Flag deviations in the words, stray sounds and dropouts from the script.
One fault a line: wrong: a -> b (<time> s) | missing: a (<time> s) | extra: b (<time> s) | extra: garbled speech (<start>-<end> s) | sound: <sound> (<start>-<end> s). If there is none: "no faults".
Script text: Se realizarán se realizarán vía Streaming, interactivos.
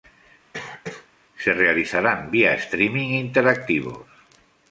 sound: cough (0.5-1.1 s)
missing: se realizarán (2.3 s)